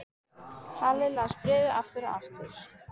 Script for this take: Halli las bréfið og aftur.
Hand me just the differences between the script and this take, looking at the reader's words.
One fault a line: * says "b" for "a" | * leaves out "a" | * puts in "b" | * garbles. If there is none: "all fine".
* puts in "aftur"